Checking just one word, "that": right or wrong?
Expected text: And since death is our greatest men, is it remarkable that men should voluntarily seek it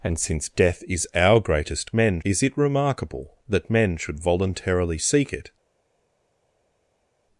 right